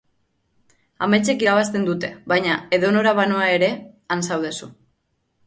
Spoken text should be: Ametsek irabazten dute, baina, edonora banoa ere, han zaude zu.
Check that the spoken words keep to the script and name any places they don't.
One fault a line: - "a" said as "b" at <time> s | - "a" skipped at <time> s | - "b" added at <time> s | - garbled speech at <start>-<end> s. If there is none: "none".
none